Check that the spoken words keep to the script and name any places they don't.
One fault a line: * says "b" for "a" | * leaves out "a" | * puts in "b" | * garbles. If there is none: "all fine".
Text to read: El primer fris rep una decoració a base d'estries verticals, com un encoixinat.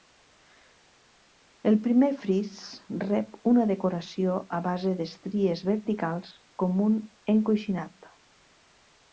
all fine